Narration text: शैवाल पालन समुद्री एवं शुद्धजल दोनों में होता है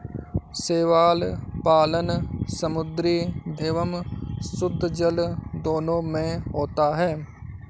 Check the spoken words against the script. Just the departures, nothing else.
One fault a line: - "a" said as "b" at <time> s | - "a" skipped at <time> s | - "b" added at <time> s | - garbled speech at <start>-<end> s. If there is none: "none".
none